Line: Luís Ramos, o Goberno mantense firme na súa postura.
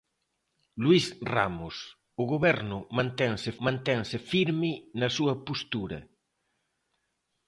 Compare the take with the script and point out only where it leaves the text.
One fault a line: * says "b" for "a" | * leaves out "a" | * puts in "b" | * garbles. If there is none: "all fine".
* puts in "mantense"